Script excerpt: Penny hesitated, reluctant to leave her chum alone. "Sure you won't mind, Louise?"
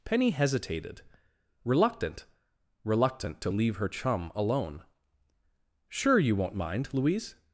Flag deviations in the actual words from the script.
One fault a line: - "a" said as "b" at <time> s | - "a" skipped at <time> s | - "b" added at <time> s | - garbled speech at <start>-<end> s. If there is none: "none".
- "reluctant" added at 2.8 s